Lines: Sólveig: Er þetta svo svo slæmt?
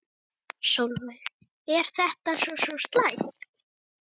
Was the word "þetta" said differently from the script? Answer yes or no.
no